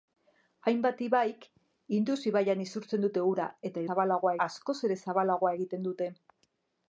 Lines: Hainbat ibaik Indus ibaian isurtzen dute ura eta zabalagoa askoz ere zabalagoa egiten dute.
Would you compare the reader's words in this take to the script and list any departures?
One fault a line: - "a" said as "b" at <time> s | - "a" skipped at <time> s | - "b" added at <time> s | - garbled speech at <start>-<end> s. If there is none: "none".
none